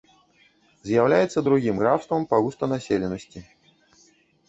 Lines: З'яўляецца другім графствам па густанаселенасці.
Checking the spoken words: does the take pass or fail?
pass